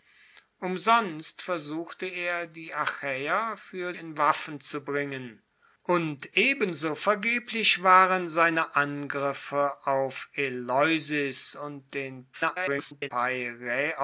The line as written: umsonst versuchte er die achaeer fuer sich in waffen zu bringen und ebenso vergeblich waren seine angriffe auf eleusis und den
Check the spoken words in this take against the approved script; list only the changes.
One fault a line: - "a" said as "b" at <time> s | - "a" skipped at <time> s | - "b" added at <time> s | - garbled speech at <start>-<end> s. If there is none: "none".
- "sich" skipped at 3.9 s
- garbled speech at 12.3-13.1 s